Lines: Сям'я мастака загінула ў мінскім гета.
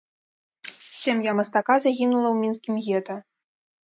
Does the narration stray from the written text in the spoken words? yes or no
no